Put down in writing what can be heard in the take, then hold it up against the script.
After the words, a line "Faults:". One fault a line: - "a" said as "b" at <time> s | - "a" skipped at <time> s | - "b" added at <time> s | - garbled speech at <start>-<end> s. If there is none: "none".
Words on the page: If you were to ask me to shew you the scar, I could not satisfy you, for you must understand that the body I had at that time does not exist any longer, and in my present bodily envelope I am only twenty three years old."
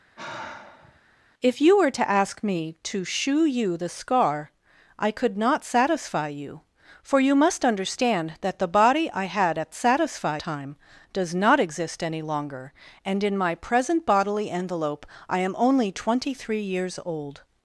If you were to ask me to shew you the scar, I could not satisfy you, for you must understand that the body I had at satisfy time does not exist any longer, and in my present bodily envelope I am only twenty three years old."
Faults:
- "that" said as "satisfy" at 9.7 s